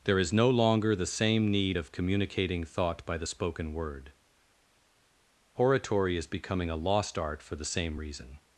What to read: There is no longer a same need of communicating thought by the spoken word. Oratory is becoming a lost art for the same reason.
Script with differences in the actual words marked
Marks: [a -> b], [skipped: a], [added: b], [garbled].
There is no longer [a -> the] same need of communicating thought by the spoken word. Oratory is becoming a lost art for the same reason.